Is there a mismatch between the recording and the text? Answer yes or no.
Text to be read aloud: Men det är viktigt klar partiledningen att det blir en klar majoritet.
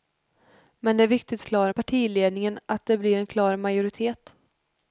no